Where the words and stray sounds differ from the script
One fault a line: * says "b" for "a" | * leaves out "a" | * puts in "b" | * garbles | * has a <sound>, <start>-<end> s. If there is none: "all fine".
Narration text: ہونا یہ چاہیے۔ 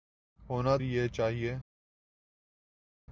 all fine